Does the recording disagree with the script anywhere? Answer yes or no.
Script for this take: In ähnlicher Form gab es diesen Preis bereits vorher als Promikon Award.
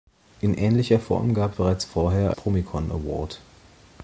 yes